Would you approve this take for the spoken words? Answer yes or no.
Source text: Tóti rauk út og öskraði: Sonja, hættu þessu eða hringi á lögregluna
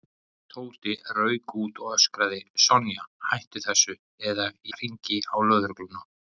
yes